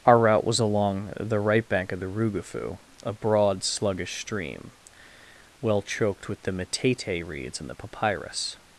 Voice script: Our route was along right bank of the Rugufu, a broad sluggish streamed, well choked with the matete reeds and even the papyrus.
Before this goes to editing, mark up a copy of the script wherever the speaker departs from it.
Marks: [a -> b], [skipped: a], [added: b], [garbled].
Our route was along [added: the] right bank of the Rugufu, a broad sluggish [streamed, -> stream] well choked with the matete reeds and [skipped: even] the papyrus.